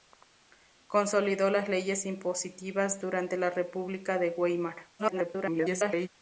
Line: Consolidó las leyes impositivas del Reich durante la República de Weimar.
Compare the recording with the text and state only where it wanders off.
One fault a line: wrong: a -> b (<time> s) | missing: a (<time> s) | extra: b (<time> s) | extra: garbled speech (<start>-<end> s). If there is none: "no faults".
missing: del Reich (3.0 s)
extra: garbled speech (5.0-6.1 s)